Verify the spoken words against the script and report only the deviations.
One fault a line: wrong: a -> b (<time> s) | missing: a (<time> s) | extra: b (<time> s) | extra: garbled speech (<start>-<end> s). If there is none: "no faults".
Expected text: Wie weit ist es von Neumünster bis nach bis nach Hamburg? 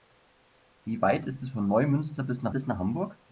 no faults